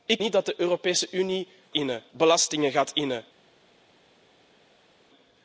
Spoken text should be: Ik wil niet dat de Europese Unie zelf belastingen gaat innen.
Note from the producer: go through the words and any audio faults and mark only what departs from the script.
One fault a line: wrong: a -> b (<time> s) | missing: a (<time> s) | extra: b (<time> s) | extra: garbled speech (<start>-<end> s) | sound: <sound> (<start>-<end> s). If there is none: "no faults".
missing: wil (0.2 s)
wrong: zelf -> innen (1.7 s)